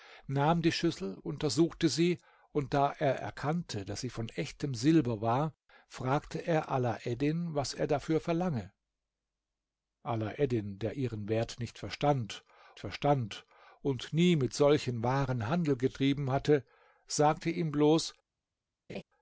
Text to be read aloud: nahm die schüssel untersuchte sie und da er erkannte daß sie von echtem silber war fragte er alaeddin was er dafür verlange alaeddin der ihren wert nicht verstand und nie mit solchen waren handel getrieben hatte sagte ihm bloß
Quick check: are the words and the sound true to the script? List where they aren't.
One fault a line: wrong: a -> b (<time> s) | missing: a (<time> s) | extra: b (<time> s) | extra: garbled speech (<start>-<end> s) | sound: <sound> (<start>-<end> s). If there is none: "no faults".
extra: verstand (12.8 s)
sound: laugh (18.9-19.0 s)